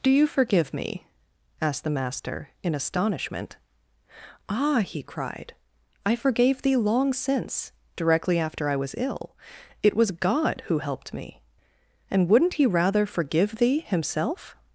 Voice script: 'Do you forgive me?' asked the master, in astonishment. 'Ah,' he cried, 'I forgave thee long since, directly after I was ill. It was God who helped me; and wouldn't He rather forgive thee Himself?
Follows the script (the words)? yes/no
yes